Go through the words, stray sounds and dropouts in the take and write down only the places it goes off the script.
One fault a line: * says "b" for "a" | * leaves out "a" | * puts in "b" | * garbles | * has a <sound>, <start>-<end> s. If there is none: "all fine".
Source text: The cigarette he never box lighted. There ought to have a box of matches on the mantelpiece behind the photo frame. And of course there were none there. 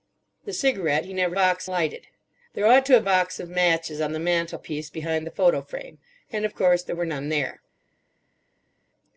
all fine